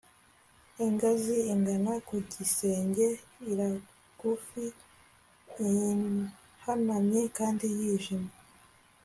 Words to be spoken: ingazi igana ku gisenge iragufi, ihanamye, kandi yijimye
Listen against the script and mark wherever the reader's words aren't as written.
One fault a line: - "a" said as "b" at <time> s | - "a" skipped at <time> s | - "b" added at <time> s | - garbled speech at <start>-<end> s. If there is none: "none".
none